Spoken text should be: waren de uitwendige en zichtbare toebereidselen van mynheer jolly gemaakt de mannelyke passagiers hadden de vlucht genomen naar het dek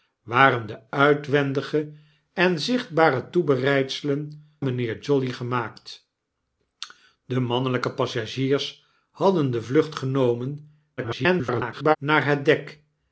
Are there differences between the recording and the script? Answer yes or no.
yes